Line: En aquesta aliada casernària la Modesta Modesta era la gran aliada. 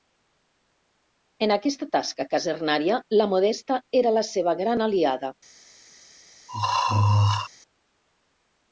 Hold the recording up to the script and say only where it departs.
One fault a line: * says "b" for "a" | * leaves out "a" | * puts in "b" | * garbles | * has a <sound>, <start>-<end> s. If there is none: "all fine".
* says "tasca" for "aliada"
* leaves out "Modesta"
* puts in "seva"
* has a throat clearing, 6.5-7.5 s